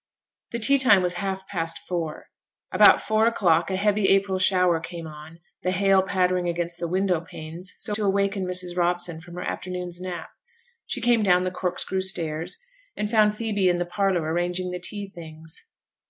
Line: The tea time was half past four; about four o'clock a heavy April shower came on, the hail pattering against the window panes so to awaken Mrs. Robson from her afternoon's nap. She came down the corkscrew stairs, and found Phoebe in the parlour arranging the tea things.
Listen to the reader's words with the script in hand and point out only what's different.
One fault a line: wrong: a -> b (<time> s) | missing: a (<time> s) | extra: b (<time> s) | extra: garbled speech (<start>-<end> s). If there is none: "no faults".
no faults